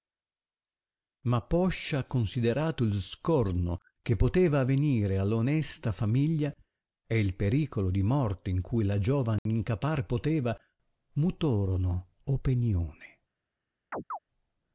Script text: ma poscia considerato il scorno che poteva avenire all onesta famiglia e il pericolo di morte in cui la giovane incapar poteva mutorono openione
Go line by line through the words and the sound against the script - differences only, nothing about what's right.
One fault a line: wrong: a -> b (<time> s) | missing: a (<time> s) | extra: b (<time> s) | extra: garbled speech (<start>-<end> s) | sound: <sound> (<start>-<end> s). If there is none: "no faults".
sound: dropout (9.4-9.5 s)
sound: chirp (13.9-14.2 s)